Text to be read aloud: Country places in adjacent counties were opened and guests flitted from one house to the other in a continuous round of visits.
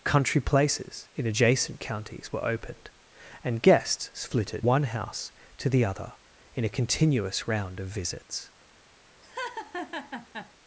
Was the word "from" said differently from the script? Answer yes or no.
yes